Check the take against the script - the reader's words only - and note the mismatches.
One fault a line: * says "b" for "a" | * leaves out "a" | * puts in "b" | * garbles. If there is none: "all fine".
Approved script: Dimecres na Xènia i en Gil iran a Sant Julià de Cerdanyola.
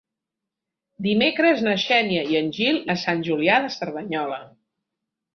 * leaves out "iran"